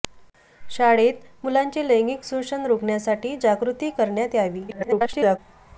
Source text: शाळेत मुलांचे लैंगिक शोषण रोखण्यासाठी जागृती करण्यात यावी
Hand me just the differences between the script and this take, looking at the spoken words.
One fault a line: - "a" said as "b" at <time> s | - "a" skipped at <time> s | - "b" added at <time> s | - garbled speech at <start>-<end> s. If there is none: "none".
- garbled speech at 4.7-5.4 s